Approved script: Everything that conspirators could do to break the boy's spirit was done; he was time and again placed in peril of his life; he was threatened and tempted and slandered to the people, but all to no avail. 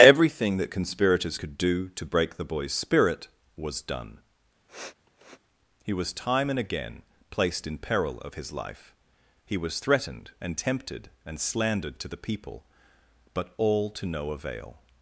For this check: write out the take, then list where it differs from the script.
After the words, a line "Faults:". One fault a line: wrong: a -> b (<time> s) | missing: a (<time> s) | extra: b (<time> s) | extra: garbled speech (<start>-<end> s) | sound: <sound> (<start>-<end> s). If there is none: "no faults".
Everything that conspirators could do to break the boy's spirit was done; he was time and again placed in peril of his life; he was threatened and tempted and slandered to the people, but all to no avail.
Faults:
sound: sniff (4.7-5.4 s)